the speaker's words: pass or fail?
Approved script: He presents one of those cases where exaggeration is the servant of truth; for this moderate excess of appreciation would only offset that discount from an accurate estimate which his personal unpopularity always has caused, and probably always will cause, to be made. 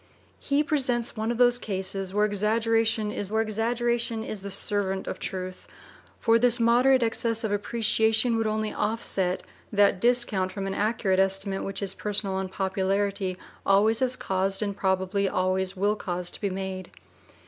fail